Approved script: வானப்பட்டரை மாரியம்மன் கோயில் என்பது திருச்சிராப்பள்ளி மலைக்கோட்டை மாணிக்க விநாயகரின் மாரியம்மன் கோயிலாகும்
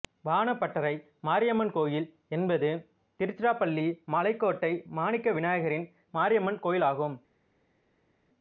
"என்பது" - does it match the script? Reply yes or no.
yes